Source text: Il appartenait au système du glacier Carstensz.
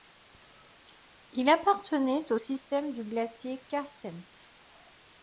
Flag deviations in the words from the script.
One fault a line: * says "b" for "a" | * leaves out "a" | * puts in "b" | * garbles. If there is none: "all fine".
all fine